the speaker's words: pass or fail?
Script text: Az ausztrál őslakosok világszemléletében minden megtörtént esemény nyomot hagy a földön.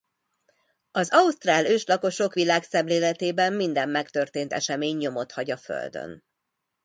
pass